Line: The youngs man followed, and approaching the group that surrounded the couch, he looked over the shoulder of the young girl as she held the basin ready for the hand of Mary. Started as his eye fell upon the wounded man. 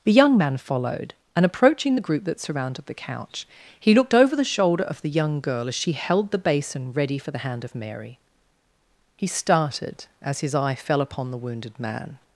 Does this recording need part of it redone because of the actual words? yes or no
yes